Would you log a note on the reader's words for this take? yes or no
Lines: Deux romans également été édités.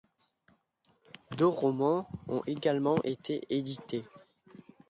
yes